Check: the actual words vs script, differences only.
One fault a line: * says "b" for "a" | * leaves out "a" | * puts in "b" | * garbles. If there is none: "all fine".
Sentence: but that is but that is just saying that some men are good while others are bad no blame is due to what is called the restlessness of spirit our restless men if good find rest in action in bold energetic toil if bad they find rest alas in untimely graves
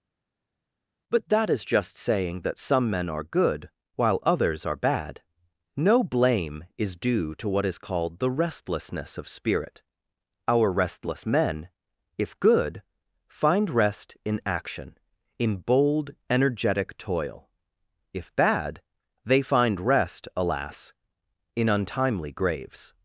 * leaves out "but that is"